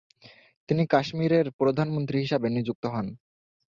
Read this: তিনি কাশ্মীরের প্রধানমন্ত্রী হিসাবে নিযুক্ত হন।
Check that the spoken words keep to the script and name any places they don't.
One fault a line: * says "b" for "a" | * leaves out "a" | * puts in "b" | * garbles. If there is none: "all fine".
all fine